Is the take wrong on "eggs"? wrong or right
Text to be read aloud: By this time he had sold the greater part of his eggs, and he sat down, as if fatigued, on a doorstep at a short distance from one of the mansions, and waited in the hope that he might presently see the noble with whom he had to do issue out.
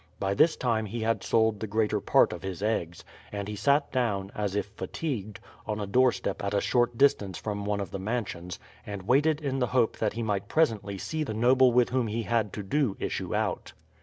right